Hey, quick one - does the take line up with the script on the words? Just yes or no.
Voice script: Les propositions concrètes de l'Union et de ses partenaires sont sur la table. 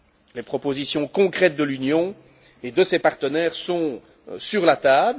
yes